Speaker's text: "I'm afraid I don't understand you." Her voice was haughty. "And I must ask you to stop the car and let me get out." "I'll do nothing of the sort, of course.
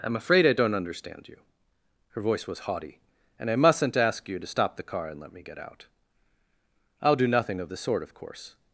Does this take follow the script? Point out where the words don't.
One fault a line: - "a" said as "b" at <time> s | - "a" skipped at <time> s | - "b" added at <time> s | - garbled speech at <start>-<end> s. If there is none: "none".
- "must" said as "mustn't" at 3.5 s